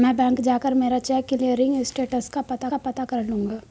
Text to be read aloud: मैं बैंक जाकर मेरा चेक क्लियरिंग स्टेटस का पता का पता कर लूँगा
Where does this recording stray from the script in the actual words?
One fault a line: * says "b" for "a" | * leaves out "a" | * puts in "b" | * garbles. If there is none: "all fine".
all fine